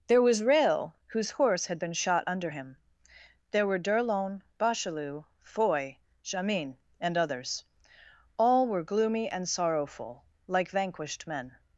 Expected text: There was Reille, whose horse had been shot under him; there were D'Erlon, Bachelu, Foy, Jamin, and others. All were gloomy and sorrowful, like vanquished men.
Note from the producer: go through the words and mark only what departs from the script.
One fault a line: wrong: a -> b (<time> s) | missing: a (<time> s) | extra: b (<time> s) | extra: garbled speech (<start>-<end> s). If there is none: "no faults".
no faults